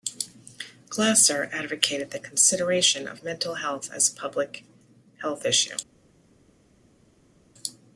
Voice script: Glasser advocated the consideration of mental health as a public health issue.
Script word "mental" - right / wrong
right